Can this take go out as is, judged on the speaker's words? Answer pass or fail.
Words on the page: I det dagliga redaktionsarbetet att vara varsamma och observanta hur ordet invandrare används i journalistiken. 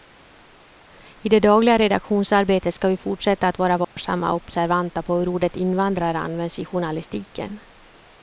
fail